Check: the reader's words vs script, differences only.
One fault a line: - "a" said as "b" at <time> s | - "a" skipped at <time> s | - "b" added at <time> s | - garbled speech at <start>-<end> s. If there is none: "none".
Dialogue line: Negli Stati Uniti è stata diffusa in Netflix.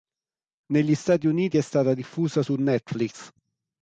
- "in" said as "su" at 2.4 s